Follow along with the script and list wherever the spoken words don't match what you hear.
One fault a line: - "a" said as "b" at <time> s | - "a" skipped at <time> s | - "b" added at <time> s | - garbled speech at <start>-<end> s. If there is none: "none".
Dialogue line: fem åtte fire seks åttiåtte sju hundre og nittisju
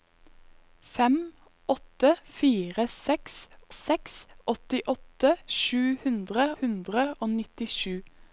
- "seks" added at 3.7 s
- "hundre" added at 6.6 s